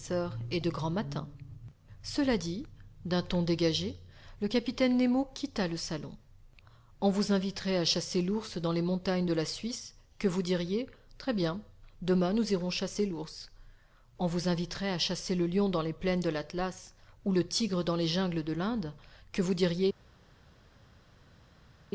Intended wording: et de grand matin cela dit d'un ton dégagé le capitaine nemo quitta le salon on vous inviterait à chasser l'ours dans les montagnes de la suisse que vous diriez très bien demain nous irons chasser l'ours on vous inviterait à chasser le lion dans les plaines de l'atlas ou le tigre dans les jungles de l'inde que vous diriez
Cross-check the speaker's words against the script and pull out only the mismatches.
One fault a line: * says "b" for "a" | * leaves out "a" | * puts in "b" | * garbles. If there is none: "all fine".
all fine